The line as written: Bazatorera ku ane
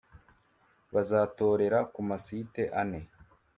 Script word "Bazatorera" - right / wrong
right